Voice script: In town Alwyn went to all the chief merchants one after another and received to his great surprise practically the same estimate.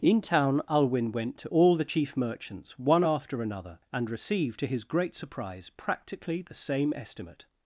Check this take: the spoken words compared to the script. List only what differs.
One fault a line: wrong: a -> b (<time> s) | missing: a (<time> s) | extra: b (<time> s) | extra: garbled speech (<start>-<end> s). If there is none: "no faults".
no faults